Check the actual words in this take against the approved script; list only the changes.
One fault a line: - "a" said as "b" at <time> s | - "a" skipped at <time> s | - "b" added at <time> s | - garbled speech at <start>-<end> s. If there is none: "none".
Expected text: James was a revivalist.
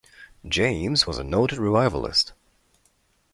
- "noted" added at 1.2 s